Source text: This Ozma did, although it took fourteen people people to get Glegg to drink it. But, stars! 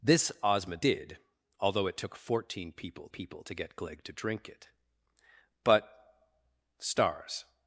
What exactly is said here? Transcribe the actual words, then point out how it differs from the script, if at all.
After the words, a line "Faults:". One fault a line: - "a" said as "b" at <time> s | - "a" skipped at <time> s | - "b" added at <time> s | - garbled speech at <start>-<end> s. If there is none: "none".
This Ozma did, although it took fourteen people people to get Glegg to drink it. But, stars!
Faults:
none